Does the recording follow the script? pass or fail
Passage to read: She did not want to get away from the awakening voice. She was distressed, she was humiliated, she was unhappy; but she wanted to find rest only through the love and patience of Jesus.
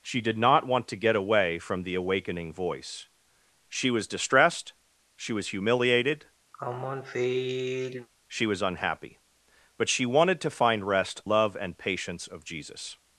fail